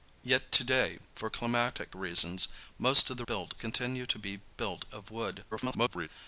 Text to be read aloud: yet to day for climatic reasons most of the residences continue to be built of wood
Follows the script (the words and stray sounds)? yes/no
no